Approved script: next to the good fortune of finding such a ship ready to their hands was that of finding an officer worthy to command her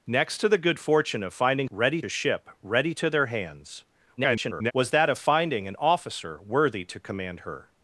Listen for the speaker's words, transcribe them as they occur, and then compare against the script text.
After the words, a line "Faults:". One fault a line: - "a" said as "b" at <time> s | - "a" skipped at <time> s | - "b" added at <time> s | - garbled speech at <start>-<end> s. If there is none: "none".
next to the good fortune of finding ready a ship ready to their hands [garbled] was that of finding an officer worthy to command her
Faults:
- "such" said as "ready" at 1.7 s
- garbled speech at 4.2-4.7 s